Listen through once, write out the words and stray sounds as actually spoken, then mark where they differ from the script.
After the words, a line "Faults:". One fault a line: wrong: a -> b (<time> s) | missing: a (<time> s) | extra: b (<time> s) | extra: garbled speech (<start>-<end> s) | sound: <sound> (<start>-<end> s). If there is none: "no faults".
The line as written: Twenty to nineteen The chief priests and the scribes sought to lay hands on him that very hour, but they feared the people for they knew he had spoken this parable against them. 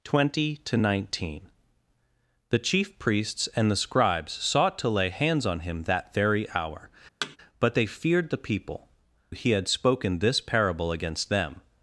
Twenty to nineteen The chief priests and the scribes sought to lay hands on him that very hour, but they feared the people he had spoken this parable against them.
Faults:
sound: thud (7.2-7.4 s)
missing: for they knew (8.9 s)